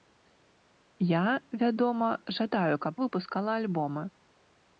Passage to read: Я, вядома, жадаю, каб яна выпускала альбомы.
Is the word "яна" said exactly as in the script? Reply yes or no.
no